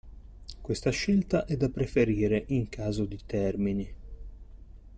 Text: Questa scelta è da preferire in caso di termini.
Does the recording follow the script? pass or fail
pass